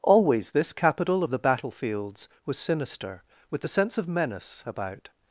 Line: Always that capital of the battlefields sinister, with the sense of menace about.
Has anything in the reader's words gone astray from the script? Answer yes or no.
yes